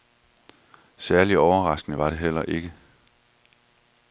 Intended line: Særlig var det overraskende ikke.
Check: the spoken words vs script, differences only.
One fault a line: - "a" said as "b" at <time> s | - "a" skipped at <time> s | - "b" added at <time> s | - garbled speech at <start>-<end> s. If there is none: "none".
- "overraskende" added at 1.4 s
- "overraskende" said as "heller" at 2.2 s